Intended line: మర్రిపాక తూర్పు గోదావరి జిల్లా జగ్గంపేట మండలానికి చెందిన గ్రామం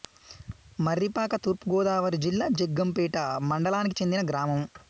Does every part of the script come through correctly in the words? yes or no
yes